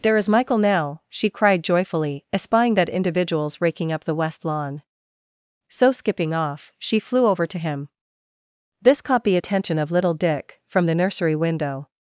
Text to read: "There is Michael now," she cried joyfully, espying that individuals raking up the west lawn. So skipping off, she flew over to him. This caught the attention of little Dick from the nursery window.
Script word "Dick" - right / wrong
right